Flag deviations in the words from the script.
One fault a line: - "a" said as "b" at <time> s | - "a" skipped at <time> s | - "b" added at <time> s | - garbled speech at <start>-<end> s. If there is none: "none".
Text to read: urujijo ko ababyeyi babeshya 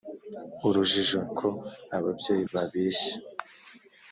none